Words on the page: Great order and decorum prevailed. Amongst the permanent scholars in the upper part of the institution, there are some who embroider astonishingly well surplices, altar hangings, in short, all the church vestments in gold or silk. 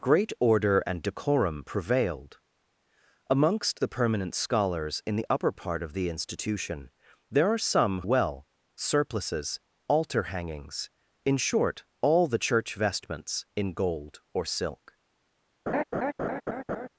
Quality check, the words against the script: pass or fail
fail